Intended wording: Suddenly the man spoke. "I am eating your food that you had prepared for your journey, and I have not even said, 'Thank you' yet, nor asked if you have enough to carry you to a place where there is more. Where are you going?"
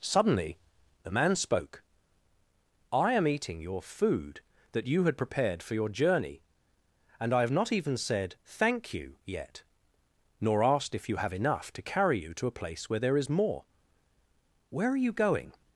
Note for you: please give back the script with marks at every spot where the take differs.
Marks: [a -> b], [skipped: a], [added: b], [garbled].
Suddenly the man spoke. "I am eating your food that you had prepared for your journey, and I have not even said, 'Thank you' yet, nor asked if you have enough to carry you to a place where there is more. Where are you going?"